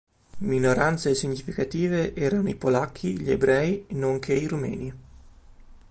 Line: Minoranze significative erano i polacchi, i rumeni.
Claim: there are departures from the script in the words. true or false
true